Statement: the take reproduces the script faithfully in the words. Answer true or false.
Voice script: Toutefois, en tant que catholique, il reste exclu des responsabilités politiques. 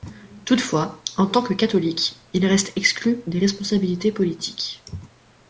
true